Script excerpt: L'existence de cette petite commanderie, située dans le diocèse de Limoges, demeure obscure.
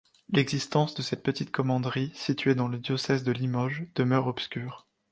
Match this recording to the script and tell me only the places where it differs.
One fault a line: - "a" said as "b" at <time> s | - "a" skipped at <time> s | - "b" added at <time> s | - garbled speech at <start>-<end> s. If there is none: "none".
none